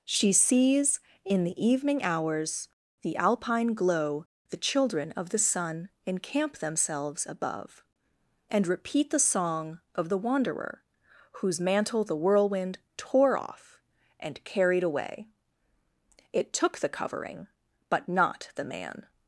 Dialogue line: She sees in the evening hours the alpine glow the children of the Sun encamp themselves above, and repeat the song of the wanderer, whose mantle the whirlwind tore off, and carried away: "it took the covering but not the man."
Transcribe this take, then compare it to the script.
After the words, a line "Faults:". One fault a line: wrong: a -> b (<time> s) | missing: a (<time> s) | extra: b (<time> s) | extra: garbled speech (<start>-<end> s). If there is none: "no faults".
She sees in the evening hours the alpine glow the children of the Sun encamp themselves above, and repeat the song of the wanderer, whose mantle the whirlwind tore off, and carried away: "it took the covering but not the man."
Faults:
no faults